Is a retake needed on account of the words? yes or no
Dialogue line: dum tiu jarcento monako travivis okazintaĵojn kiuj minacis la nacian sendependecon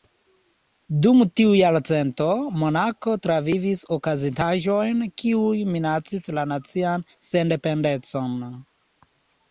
no